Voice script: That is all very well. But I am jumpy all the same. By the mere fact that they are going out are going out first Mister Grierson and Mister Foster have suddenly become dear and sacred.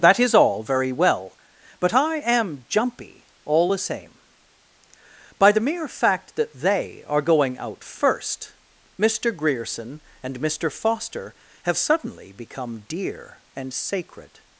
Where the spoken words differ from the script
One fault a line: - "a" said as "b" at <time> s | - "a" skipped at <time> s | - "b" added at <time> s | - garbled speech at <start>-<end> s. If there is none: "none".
- "are going out" skipped at 7.8 s